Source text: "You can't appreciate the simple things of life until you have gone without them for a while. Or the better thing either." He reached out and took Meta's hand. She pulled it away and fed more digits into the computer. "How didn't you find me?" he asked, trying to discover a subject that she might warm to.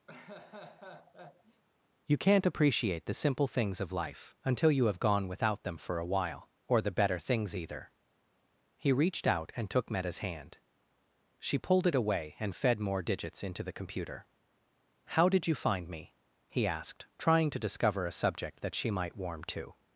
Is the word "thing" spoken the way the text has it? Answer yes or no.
no